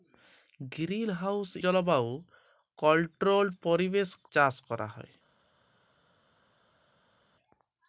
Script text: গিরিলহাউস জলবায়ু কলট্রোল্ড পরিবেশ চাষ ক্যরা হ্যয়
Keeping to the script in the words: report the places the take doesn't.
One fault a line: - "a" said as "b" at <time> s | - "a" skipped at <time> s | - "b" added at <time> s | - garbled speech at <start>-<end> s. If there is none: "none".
none